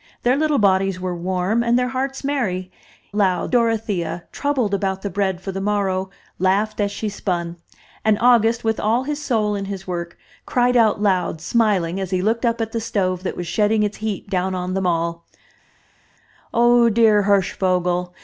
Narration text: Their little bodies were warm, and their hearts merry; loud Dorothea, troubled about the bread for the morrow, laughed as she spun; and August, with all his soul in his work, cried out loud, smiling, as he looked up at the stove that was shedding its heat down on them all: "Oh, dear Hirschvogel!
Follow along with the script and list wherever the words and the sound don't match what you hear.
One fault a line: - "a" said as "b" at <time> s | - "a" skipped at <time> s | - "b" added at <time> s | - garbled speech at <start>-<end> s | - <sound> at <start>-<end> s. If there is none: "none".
none